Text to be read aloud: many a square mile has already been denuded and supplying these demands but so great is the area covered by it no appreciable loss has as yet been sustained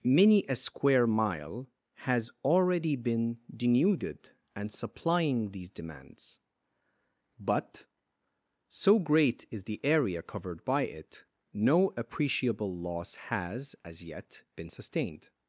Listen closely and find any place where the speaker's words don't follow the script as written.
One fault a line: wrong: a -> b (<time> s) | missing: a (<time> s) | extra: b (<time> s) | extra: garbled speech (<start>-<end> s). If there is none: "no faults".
no faults